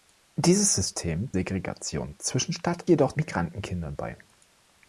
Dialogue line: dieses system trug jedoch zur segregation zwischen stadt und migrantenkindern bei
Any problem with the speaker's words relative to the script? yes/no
yes